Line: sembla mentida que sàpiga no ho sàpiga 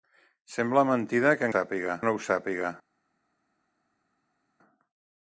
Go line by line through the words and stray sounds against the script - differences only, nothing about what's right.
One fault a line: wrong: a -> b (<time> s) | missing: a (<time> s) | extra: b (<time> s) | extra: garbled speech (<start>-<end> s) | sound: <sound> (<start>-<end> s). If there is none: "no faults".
no faults